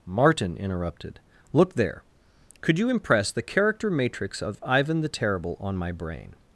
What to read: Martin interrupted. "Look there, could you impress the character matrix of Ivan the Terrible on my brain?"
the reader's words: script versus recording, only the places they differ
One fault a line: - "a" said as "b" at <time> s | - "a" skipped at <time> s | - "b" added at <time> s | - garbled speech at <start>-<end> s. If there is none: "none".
none